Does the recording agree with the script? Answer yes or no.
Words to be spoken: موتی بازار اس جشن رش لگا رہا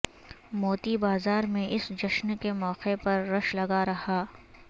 no